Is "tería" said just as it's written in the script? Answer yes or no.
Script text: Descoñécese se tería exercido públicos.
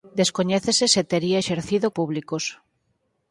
yes